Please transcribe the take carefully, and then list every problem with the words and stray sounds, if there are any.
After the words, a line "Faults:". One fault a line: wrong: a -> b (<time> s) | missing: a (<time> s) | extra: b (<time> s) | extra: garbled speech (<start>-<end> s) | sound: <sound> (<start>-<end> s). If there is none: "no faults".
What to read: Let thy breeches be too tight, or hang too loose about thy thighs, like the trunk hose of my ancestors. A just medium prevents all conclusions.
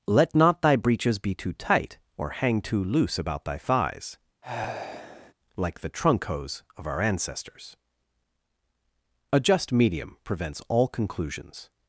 Let not thy breeches be too tight, or hang too loose about thy thighs, like the trunk hose of our ancestors. A just medium prevents all conclusions.
Faults:
extra: not (0.3 s)
sound: sigh (4.4-5.3 s)
wrong: my -> our (6.9 s)